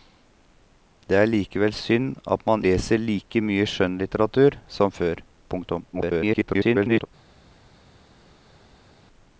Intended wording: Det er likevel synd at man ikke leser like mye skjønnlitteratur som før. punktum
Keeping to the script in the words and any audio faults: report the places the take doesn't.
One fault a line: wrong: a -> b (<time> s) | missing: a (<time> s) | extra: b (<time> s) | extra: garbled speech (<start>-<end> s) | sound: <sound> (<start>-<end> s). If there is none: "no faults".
missing: ikke (2.6 s)
extra: garbled speech (5.9-7.1 s)